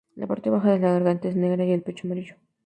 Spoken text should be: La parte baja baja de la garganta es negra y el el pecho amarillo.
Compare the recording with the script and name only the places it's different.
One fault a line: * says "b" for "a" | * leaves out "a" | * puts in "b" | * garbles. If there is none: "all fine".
* leaves out "baja"
* leaves out "el"